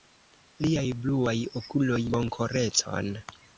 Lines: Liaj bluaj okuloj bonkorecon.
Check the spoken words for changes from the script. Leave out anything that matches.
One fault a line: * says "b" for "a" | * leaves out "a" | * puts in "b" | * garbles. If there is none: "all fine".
all fine